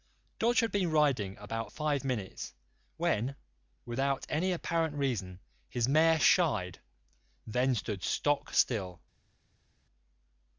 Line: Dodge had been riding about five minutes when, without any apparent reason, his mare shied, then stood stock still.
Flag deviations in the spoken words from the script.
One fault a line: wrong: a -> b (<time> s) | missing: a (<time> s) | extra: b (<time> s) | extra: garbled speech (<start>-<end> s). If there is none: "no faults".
no faults